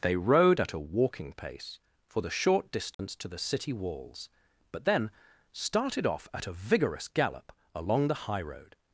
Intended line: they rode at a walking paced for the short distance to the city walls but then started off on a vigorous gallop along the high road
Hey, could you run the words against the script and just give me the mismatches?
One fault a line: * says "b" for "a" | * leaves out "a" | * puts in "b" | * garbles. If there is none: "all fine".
* says "pace" for "paced"
* says "at" for "on"